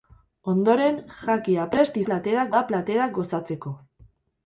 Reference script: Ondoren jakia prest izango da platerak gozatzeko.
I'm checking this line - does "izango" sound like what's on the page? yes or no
no